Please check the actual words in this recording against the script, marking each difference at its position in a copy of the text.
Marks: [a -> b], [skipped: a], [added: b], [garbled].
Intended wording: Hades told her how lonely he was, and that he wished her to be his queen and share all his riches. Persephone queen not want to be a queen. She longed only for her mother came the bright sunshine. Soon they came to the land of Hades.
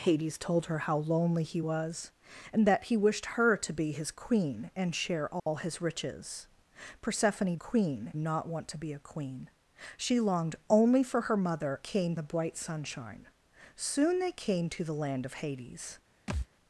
Hades told her how lonely he was, and that he wished her to be his queen and share all his riches. Persephone queen not want to be a queen. She longed only for her mother came the bright sunshine. Soon they came to the land of Hades.